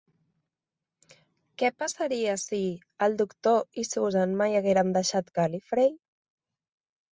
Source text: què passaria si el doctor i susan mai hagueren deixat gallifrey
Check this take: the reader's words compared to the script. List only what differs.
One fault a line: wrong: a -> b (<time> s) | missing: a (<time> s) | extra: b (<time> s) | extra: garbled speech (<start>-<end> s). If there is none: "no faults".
no faults